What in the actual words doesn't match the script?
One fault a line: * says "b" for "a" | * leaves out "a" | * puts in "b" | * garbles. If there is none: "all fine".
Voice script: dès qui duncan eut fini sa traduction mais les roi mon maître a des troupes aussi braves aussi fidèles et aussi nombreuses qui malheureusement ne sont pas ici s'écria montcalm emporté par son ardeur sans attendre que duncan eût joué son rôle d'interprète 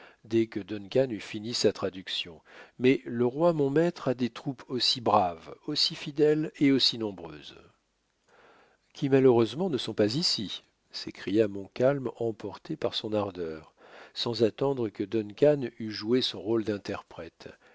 * says "que" for "qui"
* says "le" for "les"